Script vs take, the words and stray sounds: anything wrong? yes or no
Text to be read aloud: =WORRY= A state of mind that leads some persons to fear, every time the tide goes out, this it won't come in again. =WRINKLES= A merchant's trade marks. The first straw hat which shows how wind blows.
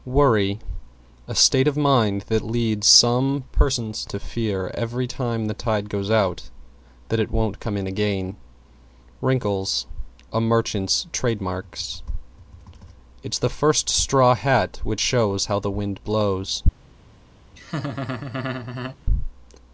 yes